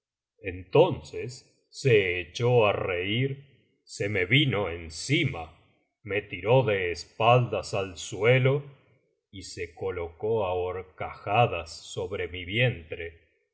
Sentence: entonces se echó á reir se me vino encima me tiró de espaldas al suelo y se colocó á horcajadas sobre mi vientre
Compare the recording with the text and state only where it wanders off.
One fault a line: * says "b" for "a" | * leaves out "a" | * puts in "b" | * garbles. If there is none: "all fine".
all fine